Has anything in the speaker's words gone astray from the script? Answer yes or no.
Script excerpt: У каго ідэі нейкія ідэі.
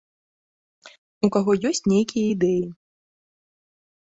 yes